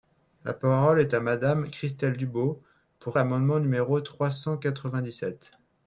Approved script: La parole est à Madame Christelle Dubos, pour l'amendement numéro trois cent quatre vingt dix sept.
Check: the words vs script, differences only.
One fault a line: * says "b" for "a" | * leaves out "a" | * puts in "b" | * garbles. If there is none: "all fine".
all fine